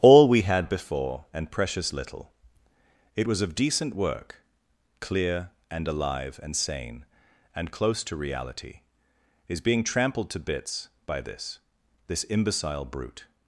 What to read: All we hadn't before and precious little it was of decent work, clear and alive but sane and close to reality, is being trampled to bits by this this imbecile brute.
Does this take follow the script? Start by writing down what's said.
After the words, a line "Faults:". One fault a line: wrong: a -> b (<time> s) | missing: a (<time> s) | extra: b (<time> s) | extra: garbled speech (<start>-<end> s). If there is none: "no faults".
All we had before and precious little it was of decent work, clear and alive and sane and close to reality, is being trampled to bits by this this imbecile brute.
Faults:
wrong: hadn't -> had (0.4 s)
wrong: but -> and (6.4 s)